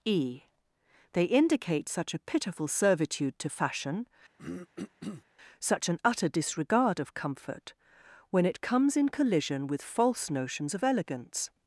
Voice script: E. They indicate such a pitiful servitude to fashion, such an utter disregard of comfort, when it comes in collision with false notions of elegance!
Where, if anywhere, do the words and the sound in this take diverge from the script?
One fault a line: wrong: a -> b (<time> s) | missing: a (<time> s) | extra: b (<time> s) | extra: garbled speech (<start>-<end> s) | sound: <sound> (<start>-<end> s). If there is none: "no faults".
sound: throat clearing (4.4-5.2 s)